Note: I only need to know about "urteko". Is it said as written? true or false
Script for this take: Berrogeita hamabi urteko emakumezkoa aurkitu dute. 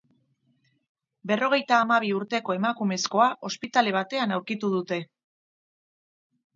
true